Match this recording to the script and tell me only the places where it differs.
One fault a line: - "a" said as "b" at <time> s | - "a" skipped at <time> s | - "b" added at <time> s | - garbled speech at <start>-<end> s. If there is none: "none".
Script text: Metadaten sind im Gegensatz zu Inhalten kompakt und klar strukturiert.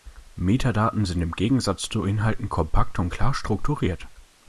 none